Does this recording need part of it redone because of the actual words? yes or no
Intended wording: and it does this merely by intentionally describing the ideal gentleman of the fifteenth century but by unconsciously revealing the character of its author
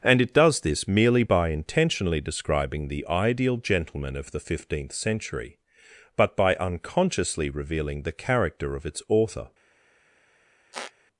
no